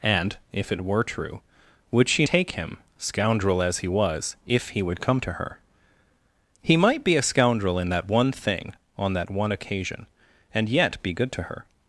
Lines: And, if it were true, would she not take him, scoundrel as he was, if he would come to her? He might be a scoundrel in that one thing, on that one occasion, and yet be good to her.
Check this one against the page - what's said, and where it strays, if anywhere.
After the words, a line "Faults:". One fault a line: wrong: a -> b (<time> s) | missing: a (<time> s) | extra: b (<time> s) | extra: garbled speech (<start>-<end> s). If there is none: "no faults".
And, if it were true, would she take him, scoundrel as he was, if he would come to her? He might be a scoundrel in that one thing, on that one occasion, and yet be good to her.
Faults:
missing: not (2.2 s)